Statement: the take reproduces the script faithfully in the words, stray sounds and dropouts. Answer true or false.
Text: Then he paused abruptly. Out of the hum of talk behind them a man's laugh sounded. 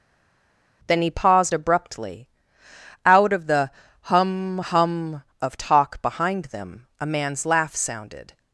false